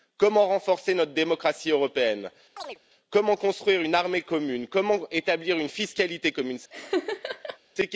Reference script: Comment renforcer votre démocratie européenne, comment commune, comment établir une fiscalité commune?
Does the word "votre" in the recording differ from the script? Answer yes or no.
yes